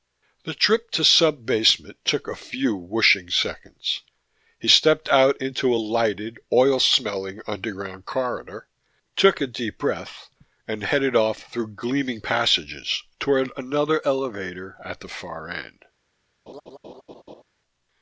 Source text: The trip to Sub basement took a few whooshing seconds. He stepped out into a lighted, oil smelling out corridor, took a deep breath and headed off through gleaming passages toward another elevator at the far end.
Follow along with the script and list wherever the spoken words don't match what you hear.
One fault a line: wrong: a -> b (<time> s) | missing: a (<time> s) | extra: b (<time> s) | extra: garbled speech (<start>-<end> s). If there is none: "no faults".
wrong: out -> underground (7.5 s)